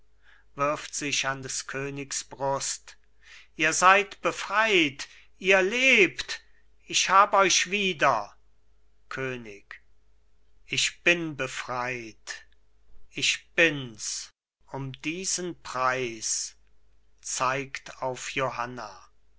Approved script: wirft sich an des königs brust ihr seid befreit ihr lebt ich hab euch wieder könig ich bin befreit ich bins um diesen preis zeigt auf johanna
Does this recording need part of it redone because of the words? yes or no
no